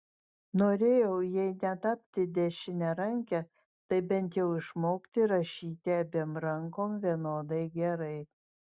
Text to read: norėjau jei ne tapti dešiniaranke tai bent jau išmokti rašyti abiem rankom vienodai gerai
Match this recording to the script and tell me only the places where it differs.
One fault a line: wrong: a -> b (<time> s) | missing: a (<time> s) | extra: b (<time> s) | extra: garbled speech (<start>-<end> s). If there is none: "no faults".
no faults